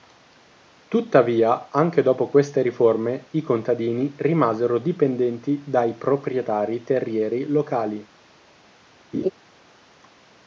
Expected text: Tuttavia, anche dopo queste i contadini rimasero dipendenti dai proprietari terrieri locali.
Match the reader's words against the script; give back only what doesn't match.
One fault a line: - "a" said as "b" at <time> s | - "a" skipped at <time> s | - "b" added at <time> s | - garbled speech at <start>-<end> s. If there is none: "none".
- "riforme" added at 2.6 s